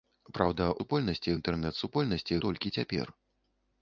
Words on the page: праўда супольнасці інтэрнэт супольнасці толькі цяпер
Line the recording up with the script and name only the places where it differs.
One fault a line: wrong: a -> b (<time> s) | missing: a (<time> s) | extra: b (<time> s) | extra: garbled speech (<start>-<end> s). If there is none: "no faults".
no faults